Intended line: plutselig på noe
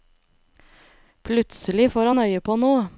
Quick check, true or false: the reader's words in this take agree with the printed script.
false